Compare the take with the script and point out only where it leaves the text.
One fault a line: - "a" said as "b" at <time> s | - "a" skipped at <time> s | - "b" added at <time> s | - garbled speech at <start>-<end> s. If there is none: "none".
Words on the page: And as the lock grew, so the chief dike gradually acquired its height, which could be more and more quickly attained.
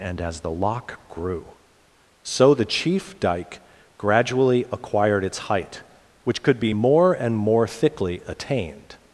- "quickly" said as "thickly" at 7.6 s